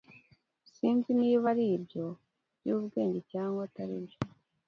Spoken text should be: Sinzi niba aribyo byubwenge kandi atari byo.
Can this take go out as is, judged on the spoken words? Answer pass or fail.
fail